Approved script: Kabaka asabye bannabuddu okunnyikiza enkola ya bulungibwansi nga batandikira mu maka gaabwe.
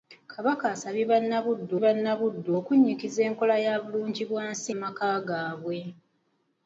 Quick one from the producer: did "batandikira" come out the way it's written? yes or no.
no